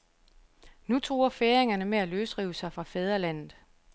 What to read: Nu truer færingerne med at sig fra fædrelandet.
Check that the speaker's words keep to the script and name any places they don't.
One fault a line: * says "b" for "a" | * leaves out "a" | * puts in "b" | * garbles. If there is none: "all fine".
* puts in "løsrive"